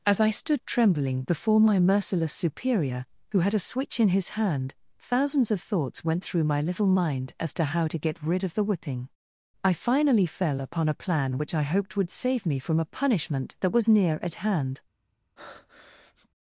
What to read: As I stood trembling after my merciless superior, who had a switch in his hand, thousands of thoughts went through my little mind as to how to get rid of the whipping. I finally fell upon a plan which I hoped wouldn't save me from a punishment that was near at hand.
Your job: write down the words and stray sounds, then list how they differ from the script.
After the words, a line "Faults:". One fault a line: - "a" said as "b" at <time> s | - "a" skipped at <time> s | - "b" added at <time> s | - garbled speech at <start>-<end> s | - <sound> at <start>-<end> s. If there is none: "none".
As I stood trembling before my merciless superior, who had a switch in his hand, thousands of thoughts went through my little mind as to how to get rid of the whipping. I finally fell upon a plan which I hoped would save me from a punishment that was near at hand.
Faults:
- "after" said as "before" at 1.2 s
- "wouldn't" said as "would" at 12.0 s
- breath at 15.4-16.3 s